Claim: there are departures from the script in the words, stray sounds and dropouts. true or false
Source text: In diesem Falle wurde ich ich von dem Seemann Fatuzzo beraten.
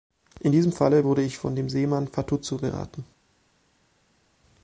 true